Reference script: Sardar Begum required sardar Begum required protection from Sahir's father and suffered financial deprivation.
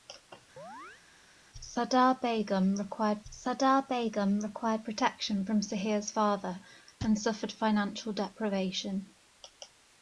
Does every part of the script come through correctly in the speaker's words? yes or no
yes